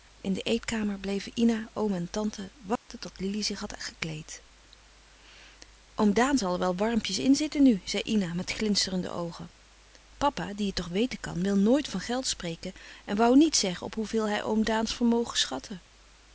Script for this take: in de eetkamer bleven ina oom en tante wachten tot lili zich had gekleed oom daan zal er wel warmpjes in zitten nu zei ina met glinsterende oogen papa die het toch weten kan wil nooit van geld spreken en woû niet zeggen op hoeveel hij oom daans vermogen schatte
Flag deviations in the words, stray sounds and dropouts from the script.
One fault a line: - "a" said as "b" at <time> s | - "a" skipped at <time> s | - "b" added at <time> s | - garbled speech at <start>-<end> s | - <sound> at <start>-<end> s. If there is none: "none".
- dropout at 2.8-2.9 s